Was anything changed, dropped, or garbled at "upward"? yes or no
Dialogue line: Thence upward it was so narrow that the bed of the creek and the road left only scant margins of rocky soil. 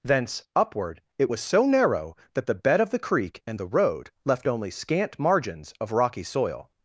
no